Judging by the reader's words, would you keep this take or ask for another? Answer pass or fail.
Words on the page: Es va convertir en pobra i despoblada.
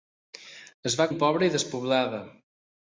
fail